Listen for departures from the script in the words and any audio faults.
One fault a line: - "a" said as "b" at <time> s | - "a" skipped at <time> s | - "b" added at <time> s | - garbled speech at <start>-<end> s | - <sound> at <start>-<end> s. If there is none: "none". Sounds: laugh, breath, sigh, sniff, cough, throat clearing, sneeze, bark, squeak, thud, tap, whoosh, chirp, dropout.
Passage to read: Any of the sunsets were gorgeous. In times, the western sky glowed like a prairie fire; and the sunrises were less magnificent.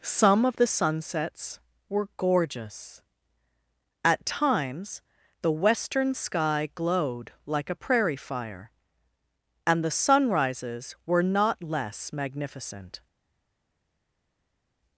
- "Any" said as "Some" at 0.0 s
- "In" said as "At" at 4.0 s
- "not" added at 11.2 s